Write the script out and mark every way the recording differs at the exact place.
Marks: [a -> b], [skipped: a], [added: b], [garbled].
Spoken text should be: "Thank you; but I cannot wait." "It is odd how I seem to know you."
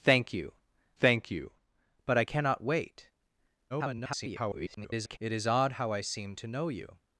"Thank you; [added: thank you] but I cannot wait." [garbled] "It is odd how I seem to know you."